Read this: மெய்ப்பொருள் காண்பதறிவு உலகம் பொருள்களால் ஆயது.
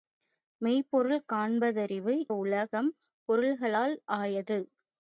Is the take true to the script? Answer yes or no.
yes